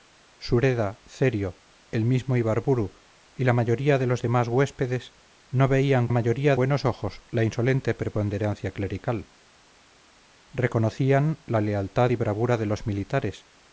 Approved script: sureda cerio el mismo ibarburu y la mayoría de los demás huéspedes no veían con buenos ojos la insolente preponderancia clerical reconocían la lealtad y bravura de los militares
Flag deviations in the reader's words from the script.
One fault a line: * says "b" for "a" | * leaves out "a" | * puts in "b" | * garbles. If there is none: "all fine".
* says "mayoría" for "con"